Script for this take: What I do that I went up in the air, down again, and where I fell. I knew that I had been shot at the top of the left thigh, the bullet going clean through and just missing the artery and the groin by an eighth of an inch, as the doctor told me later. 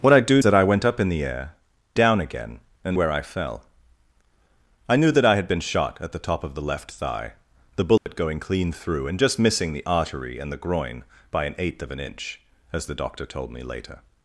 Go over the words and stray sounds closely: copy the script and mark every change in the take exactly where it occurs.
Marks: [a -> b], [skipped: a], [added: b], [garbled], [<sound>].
What I do that I went up in the air, down again, and where I fell. I knew that I had been shot at the top of the left thigh, the bullet [dropout] going clean through and just missing the artery and the groin by an eighth of an inch, as the doctor told me later.